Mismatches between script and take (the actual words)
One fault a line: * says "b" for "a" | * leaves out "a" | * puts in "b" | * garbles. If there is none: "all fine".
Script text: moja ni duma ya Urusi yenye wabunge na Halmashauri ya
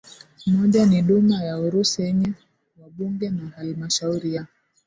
all fine